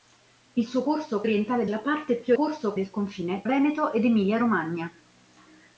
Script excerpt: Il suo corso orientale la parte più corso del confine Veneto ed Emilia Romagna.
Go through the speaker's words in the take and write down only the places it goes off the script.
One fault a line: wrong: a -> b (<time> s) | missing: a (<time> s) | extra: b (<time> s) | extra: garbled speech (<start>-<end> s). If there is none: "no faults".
no faults